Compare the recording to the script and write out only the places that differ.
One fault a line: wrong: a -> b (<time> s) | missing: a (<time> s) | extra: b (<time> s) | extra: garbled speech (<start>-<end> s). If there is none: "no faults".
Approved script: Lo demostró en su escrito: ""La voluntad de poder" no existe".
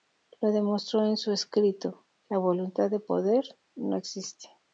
no faults